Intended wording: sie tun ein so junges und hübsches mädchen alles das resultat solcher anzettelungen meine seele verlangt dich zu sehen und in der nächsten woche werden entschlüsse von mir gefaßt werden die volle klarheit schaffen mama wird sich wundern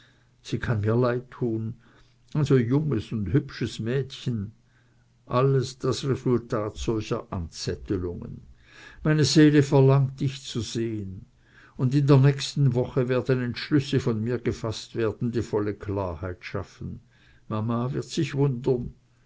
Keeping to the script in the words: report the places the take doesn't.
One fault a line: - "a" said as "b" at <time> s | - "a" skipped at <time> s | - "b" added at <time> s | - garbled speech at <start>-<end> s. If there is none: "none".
- "kann mir leid" added at 0.6 s